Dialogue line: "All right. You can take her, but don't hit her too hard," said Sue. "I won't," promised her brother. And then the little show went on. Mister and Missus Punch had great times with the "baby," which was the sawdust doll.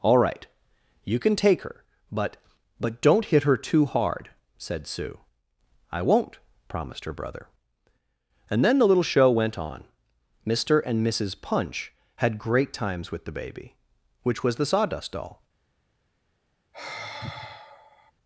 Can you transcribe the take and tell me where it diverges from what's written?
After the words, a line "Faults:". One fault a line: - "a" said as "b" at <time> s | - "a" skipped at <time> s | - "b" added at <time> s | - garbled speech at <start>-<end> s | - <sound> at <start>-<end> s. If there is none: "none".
"All right. You can take her, but but don't hit her too hard," said Sue. "I won't," promised her brother. And then the little show went on. Mister and Missus Punch had great times with the "baby," which was the sawdust doll.
Faults:
- "but" added at 2.8 s
- sigh at 16.7-18.1 s